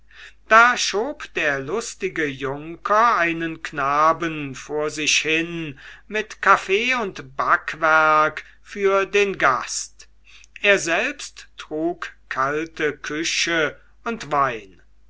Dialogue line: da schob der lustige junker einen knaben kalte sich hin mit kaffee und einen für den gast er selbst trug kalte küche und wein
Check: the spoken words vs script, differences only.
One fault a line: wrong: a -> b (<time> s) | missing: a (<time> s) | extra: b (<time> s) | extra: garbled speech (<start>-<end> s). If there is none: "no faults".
wrong: kalte -> vor (4.5 s)
wrong: einen -> backwerk (7.4 s)